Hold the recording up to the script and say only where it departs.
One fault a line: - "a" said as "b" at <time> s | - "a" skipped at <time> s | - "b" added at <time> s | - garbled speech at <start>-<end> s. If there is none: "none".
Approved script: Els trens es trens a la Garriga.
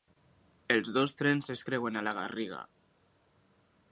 - "dos" added at 0.9 s
- "trens" said as "creuen" at 1.7 s